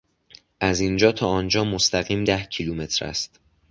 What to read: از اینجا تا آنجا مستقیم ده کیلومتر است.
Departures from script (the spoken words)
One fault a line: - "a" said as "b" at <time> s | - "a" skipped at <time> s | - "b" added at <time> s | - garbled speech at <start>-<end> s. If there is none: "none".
none